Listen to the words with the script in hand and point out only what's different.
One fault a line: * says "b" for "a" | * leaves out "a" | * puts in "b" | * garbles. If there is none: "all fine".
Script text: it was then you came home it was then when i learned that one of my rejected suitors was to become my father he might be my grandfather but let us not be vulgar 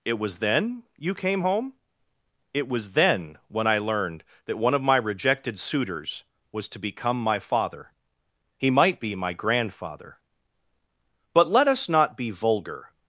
all fine